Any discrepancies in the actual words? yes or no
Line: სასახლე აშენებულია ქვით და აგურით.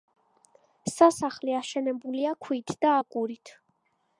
no